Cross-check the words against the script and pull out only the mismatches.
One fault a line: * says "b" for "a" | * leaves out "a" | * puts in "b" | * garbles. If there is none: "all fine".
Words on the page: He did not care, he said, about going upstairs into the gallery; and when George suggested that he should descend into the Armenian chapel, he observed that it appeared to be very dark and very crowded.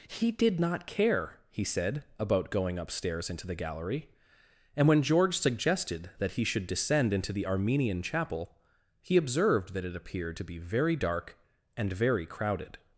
all fine